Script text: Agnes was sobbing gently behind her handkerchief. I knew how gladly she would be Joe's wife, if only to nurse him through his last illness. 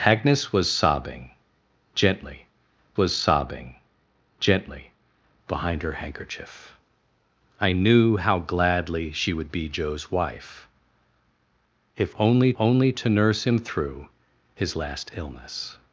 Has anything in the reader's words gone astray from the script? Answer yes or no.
yes